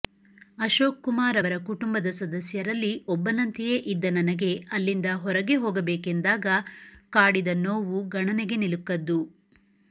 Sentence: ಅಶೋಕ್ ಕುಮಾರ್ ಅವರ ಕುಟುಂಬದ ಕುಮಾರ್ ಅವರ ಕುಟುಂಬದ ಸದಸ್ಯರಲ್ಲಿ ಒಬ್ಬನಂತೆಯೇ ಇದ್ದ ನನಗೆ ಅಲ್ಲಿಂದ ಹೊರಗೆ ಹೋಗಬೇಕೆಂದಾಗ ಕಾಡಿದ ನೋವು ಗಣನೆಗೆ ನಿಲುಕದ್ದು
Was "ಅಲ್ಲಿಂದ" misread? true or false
false